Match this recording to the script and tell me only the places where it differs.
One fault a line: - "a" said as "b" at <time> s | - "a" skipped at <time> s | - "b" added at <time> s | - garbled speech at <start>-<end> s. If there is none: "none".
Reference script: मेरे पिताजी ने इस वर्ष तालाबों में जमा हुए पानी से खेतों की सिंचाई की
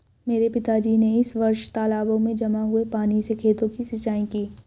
none